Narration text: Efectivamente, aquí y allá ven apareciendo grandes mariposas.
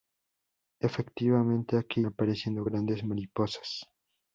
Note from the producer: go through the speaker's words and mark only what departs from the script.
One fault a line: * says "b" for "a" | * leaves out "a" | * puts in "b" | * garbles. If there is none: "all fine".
* leaves out "y allá ven"